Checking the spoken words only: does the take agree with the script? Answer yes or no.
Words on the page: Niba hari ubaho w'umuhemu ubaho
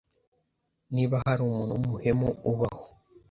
no